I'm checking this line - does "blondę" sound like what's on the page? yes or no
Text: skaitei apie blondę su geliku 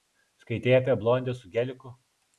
yes